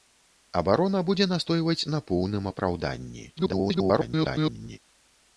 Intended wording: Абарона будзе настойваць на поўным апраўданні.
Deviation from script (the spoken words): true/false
true